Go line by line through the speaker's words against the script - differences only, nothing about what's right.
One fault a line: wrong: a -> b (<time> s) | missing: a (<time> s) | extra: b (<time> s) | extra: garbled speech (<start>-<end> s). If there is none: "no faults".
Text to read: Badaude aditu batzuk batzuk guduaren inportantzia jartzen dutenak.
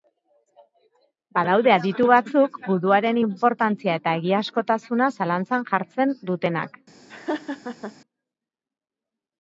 missing: batzuk (2.5 s)
extra: eta egiazkotasuna zalantzan (4.0 s)